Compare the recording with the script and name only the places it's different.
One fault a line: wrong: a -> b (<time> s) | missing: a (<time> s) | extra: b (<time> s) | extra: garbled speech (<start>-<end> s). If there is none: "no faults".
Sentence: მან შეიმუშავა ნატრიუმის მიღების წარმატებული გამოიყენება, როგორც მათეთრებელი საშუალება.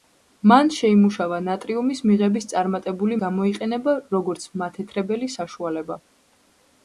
no faults